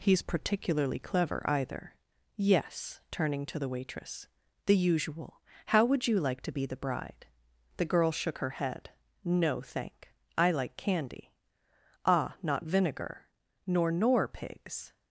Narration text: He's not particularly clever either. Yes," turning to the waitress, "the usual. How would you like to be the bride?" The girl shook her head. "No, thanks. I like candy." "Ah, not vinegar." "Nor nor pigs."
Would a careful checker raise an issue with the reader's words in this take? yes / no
yes